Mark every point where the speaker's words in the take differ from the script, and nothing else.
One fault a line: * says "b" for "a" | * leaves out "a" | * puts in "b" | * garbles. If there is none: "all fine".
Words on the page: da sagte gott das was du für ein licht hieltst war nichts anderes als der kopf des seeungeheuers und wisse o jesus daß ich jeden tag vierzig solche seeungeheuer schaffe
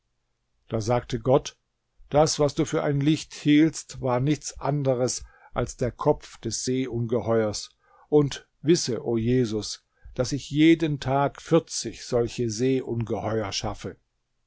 all fine